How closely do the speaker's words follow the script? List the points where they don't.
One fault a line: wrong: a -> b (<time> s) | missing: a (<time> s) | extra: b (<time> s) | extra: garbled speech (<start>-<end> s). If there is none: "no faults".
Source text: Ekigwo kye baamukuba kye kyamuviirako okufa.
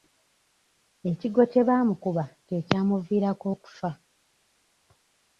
no faults